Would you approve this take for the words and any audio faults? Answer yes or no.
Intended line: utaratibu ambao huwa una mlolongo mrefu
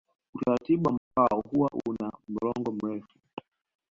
no